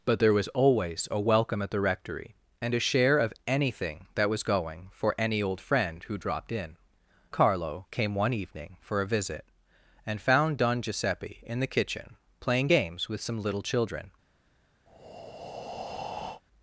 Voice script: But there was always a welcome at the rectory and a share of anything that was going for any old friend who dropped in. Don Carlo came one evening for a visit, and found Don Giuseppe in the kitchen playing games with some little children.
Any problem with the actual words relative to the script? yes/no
yes